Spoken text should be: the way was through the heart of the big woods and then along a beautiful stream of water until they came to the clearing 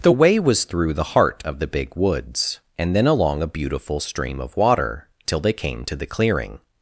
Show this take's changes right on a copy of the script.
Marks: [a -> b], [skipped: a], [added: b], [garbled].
the way was through the heart of the big woods and then along a beautiful stream of water [until -> till] they came to the clearing